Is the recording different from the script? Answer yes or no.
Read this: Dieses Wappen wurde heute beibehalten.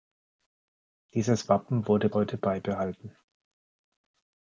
no